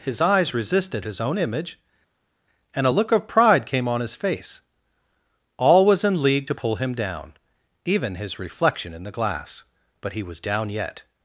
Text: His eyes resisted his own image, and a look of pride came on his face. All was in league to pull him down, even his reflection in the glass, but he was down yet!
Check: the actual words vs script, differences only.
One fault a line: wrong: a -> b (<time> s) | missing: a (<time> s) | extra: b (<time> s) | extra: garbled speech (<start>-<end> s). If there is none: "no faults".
no faults